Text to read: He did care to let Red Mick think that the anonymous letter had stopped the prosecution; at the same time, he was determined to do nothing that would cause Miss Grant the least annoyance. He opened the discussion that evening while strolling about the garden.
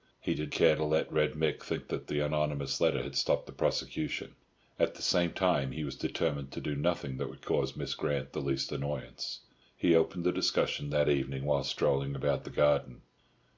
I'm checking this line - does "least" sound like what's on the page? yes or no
yes